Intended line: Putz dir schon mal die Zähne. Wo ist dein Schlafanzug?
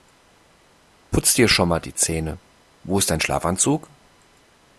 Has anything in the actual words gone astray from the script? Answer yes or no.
no